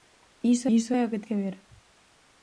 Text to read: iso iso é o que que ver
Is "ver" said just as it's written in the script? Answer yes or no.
yes